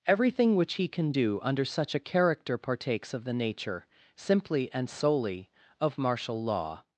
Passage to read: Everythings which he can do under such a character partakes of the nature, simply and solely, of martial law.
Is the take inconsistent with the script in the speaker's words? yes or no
yes